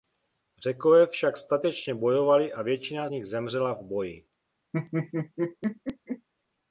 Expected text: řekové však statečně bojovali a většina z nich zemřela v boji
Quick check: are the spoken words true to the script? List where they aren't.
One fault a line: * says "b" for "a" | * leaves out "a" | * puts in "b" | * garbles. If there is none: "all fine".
all fine